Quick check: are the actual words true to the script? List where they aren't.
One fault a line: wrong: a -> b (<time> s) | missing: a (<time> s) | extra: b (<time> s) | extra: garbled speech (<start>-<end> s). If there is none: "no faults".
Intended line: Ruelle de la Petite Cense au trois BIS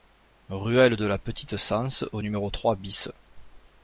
extra: numéro (2.2 s)